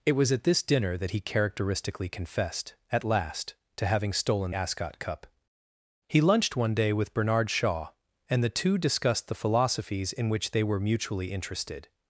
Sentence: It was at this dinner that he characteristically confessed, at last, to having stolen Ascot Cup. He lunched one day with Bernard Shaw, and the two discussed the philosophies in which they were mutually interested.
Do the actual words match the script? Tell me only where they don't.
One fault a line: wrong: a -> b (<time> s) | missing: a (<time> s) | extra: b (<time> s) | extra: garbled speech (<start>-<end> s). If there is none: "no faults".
no faults